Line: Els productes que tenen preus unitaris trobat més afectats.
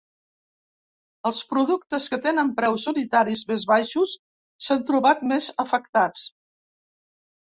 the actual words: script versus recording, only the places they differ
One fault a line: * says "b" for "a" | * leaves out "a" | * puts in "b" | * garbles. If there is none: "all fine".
* puts in "més baixos s'han"